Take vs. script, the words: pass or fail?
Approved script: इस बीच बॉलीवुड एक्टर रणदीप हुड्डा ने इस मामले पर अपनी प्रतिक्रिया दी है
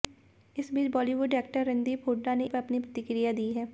fail